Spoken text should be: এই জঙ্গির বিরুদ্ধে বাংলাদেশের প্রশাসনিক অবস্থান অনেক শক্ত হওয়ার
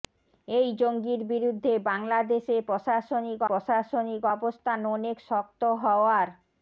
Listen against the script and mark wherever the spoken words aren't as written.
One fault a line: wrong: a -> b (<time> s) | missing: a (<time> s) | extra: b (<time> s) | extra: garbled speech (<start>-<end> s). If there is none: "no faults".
extra: প্রশাসনিক (3.5 s)